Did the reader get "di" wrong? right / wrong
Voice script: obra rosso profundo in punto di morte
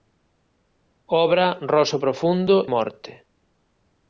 wrong